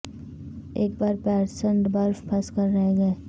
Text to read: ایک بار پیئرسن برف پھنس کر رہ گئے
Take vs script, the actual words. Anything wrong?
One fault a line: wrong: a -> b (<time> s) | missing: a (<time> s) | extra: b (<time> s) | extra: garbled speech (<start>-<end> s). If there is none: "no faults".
no faults